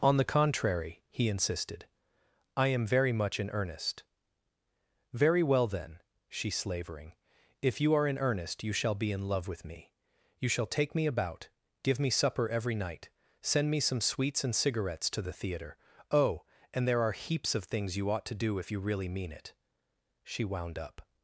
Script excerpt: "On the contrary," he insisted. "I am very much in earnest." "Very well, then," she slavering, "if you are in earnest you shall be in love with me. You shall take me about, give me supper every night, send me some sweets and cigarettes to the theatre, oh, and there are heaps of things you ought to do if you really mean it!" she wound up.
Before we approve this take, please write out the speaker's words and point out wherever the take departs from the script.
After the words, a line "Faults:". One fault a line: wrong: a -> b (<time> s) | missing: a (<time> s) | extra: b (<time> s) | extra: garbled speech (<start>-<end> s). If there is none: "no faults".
"On the contrary," he insisted. "I am very much in earnest." "Very well, then," she slavering, "if you are in earnest you shall be in love with me. You shall take me about, give me supper every night, send me some sweets and cigarettes to the theatre, oh, and there are heaps of things you ought to do if you really mean it!" she wound up.
Faults:
no faults